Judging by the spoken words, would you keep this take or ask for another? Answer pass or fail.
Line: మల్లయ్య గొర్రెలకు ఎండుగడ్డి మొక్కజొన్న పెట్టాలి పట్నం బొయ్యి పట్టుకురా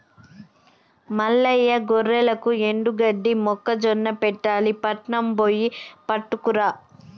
pass